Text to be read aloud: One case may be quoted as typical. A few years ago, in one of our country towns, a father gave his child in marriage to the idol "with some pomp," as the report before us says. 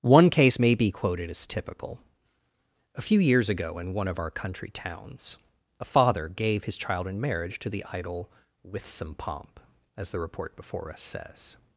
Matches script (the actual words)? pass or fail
pass